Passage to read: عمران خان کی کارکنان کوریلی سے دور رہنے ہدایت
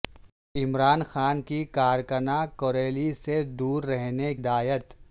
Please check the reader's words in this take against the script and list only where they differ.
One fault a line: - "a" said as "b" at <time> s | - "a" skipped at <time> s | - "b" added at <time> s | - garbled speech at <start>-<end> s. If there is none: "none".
none